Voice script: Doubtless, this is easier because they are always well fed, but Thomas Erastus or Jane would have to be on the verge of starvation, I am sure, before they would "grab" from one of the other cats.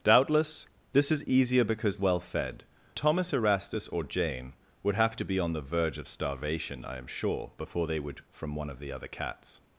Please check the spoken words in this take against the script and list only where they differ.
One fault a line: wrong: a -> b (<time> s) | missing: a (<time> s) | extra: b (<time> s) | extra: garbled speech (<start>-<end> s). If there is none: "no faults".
missing: they are always (2.0 s)
missing: but (2.6 s)
missing: grab (8.2 s)